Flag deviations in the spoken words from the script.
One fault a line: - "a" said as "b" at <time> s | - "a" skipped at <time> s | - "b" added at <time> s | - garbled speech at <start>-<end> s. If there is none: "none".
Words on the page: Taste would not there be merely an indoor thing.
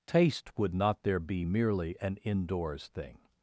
- "indoor" said as "indoors" at 2.2 s